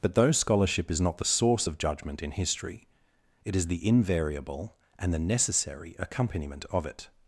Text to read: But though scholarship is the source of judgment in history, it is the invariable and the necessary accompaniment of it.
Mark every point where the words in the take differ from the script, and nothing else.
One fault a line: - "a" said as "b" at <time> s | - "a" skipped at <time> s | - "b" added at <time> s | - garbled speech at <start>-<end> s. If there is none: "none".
- "not" added at 1.0 s